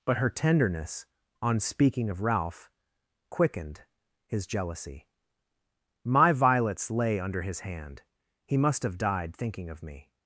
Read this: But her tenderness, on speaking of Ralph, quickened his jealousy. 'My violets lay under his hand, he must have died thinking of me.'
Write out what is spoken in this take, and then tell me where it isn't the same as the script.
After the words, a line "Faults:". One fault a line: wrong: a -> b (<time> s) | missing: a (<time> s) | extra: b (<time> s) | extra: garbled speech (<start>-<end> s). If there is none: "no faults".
But her tenderness, on speaking of Ralph, quickened his jealousy. 'My violets lay under his hand, he must have died thinking of me.'
Faults:
no faults